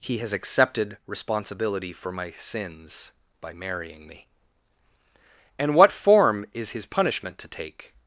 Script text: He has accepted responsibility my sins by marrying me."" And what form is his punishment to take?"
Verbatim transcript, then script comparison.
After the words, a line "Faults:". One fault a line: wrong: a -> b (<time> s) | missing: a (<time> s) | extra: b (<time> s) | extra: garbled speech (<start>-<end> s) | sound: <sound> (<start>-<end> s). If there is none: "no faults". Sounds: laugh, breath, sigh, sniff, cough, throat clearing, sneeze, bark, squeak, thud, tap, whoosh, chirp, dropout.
He has accepted responsibility for my sins by marrying me."" And what form is his punishment to take?"
Faults:
extra: for (1.9 s)